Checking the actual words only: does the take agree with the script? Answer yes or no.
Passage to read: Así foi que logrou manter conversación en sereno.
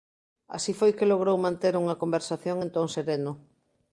no